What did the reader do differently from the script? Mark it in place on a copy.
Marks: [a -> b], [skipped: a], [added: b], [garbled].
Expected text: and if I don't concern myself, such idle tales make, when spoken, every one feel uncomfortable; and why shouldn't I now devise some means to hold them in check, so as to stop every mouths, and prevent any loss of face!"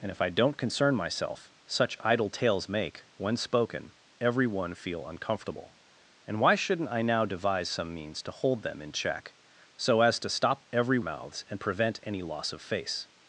and if I don't concern myself, such idle tales make, when spoken, every one feel uncomfortable; and why shouldn't I now devise some means to hold them in check, so as to stop every mouths, and prevent any loss of face!"